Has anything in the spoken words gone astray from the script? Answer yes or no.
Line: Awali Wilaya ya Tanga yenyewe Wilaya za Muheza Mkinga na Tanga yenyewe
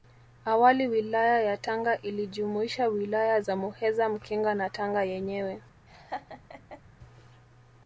yes